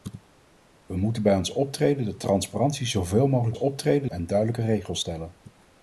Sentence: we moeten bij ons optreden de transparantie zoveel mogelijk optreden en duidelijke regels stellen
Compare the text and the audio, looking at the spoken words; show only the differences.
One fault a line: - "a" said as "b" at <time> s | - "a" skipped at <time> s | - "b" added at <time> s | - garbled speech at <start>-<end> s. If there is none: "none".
none